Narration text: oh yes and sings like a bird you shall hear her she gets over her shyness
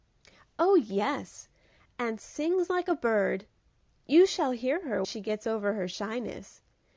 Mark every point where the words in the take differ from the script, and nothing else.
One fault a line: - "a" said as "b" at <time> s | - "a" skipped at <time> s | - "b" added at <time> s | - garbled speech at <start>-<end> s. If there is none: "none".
none